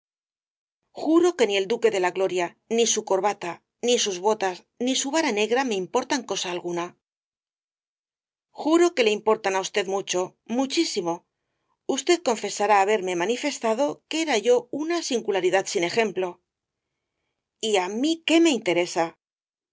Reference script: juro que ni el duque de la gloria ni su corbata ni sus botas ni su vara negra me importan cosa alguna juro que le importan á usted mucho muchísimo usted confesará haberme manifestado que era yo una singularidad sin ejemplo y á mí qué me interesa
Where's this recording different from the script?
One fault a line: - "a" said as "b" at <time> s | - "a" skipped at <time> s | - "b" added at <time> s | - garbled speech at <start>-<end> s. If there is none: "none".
none